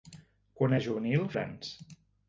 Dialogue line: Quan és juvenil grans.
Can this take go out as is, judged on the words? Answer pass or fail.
pass